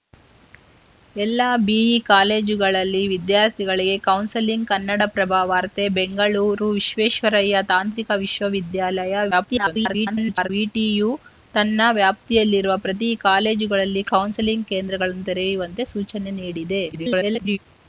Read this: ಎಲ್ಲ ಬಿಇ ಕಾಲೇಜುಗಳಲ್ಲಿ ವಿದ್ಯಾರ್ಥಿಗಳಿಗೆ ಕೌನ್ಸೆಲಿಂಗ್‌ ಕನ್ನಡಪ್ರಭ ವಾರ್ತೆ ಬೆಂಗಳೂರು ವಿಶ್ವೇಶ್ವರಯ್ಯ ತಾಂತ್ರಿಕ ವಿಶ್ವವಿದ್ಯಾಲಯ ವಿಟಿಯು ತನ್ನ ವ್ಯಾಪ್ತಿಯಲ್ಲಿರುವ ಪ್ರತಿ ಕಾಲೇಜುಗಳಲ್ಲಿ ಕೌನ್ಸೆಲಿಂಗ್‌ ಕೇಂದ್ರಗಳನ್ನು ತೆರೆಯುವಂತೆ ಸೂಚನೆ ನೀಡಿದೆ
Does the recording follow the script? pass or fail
fail